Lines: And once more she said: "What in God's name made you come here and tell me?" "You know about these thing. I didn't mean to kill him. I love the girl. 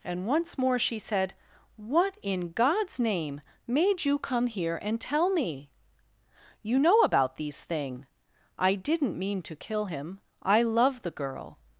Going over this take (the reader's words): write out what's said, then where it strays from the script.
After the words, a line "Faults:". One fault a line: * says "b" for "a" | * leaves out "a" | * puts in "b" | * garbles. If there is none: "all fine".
And once more she said: "What in God's name made you come here and tell me?" "You know about these thing. I didn't mean to kill him. I love the girl.
Faults:
all fine